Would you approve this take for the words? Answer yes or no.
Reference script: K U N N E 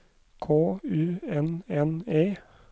yes